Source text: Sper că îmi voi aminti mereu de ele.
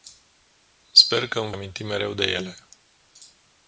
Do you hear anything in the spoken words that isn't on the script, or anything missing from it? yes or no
yes